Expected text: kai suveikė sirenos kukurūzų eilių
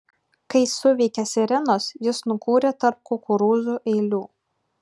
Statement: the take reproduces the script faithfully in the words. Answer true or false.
false